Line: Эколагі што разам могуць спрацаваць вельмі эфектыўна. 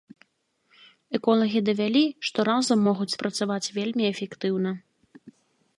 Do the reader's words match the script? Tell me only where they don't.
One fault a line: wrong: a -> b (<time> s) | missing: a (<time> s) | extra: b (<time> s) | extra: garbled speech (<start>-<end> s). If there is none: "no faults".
extra: давялі (1.7 s)